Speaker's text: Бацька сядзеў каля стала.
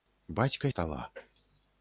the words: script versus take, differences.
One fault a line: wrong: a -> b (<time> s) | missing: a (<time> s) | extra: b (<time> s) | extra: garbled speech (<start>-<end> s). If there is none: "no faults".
missing: сядзеў каля (0.7 s)